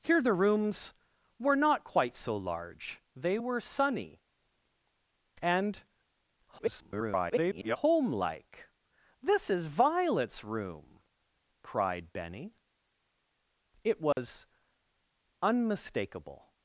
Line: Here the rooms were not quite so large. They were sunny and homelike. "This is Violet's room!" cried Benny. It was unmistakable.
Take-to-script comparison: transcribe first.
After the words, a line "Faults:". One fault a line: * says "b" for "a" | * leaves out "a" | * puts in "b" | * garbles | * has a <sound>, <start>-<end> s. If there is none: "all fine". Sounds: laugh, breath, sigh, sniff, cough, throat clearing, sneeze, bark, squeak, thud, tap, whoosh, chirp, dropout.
Here the rooms were not quite so large. They were sunny and [garbled] homelike. "This is Violet's room!" cried Benny. It was unmistakable.
Faults:
* garbles
* has a dropout, 14.1-14.2 s